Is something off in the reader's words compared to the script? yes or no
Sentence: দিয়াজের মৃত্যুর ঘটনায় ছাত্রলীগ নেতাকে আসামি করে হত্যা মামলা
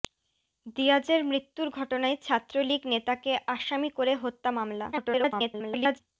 yes